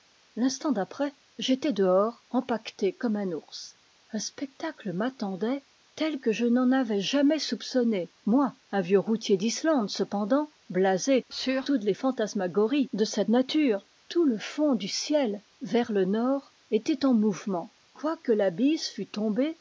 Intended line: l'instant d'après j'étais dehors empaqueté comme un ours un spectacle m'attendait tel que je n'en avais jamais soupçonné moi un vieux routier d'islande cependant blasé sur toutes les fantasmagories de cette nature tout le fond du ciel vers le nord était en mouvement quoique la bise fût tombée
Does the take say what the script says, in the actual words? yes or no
yes